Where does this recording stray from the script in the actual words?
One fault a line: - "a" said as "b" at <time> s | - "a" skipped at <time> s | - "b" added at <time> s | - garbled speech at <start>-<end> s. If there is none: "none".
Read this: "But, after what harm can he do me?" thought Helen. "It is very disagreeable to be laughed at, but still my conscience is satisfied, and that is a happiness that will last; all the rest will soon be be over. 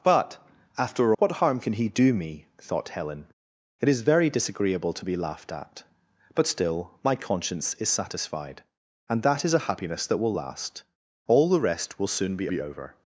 none